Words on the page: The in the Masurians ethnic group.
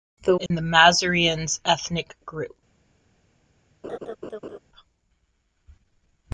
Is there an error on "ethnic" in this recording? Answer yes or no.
no